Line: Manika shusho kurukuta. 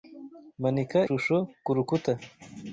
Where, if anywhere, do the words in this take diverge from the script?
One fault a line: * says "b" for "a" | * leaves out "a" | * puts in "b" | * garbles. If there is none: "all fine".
all fine